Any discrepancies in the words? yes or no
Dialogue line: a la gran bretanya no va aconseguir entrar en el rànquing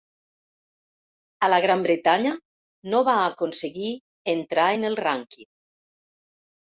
no